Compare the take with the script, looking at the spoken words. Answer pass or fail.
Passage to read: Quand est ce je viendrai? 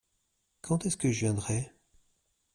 fail